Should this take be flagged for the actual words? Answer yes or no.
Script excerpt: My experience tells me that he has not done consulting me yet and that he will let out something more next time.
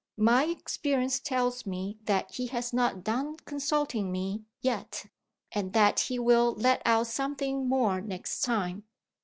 no